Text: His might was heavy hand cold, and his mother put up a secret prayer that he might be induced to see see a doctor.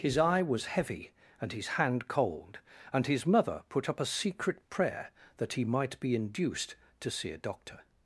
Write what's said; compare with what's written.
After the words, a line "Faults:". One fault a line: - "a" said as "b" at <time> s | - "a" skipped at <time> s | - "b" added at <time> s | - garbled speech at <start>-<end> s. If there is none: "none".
His eye was heavy and his hand cold, and his mother put up a secret prayer that he might be induced to see a doctor.
Faults:
- "might" said as "eye" at 0.2 s
- "and his" added at 1.4 s
- "see" skipped at 7.3 s